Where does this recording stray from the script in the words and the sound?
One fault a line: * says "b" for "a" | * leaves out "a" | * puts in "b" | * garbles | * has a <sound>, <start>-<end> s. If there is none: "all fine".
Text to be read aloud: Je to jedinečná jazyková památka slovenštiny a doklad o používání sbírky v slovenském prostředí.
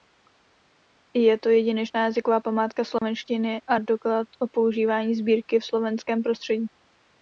* has a dropout, 3.0-3.0 s